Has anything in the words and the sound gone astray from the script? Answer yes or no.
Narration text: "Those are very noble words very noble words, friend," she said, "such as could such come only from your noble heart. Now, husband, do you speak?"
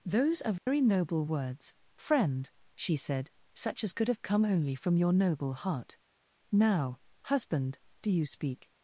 yes